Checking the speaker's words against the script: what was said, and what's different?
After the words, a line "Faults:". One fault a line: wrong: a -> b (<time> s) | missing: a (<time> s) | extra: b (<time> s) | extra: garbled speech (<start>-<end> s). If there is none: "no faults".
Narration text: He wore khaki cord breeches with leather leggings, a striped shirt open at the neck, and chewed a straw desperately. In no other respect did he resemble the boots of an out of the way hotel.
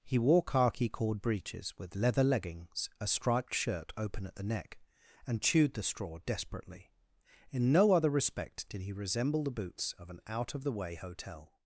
He wore khaki cord breeches with leather leggings, a striped shirt open at the neck, and chewed the straw desperately. In no other respect did he resemble the boots of an out of the way hotel.
Faults:
wrong: a -> the (5.7 s)